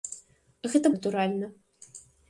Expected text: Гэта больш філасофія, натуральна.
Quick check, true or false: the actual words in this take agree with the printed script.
false